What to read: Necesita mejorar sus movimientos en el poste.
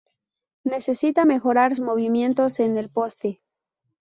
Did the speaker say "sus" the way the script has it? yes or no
no